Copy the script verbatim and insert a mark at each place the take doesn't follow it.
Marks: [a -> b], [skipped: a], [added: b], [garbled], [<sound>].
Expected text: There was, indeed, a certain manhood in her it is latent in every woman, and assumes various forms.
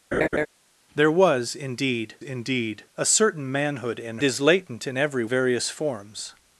[laugh] There was, indeed, [added: indeed] a certain manhood in [skipped: her it] is latent in every [skipped: woman, and assumes] various forms.